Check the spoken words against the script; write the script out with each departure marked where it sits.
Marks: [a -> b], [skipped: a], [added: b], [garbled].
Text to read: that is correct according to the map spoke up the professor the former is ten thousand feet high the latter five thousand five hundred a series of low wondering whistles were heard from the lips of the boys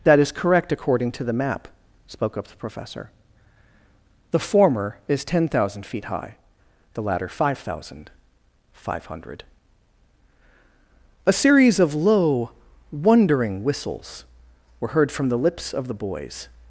that is correct according to the map spoke up the professor the former is ten thousand feet high the latter five thousand five hundred a series of low wondering whistles were heard from the lips of the boys